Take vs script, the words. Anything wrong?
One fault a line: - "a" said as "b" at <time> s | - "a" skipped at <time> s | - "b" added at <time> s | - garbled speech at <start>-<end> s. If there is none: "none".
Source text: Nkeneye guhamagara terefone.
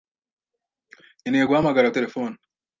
none